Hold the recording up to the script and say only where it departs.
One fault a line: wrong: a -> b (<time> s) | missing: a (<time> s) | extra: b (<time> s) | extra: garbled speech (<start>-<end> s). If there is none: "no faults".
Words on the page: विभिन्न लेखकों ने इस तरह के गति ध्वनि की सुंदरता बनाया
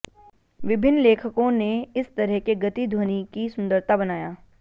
no faults